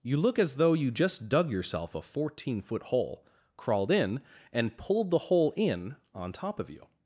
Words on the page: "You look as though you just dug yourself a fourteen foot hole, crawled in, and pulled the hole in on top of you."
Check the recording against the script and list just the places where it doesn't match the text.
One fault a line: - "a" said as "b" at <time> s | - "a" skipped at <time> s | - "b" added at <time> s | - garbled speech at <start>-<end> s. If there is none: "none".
none